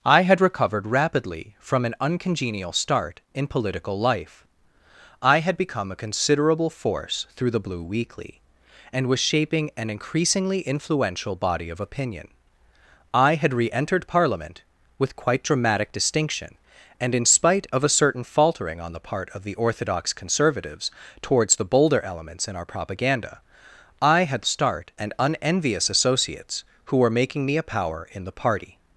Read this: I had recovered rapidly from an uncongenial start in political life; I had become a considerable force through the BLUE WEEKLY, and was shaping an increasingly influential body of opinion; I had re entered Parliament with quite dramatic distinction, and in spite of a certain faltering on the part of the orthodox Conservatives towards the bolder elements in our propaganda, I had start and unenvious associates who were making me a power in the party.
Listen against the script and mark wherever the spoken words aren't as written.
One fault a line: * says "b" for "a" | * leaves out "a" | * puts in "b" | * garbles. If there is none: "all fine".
all fine